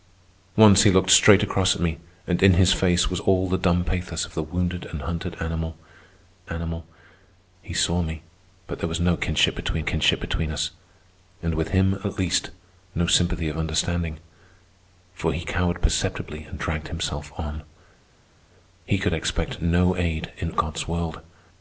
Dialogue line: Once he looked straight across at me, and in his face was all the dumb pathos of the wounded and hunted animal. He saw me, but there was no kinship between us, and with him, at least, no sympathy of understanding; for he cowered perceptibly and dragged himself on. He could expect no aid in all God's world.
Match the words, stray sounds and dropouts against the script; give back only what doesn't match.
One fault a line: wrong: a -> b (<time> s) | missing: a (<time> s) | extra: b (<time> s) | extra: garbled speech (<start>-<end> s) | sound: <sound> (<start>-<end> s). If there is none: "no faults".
extra: animal (6.5 s)
extra: kinship between (9.8 s)
missing: all (20.5 s)